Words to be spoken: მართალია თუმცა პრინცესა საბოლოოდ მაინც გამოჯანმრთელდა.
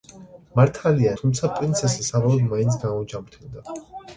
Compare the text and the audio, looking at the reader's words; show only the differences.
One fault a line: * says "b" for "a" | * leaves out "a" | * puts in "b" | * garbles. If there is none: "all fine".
all fine